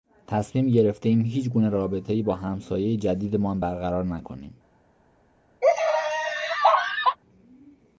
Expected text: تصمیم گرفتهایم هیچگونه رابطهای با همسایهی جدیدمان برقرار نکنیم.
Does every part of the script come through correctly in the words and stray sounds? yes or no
no